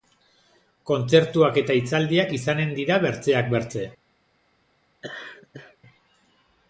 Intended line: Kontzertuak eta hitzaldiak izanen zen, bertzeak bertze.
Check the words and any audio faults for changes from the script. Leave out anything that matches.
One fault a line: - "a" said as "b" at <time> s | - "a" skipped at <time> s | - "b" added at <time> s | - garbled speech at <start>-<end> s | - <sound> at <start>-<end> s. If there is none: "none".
- "zen" said as "dira" at 2.8 s
- laugh at 5.0-5.8 s